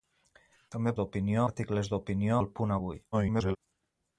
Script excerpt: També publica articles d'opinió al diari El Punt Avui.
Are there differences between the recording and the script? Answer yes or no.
yes